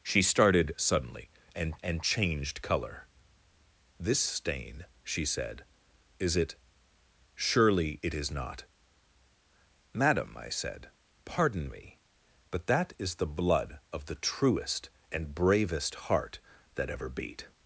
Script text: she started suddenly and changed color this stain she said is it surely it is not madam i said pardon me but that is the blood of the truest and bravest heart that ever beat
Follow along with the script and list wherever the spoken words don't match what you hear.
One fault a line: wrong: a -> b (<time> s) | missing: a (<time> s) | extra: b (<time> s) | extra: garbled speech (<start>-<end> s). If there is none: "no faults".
extra: and (1.8 s)